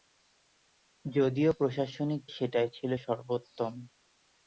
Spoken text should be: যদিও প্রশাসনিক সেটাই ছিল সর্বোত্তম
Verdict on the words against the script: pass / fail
pass